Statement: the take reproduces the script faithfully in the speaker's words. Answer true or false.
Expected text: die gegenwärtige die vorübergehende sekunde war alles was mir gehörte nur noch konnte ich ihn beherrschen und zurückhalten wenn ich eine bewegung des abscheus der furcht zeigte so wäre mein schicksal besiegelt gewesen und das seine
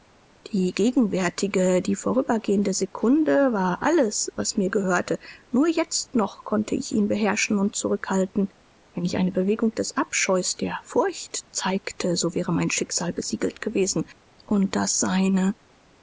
false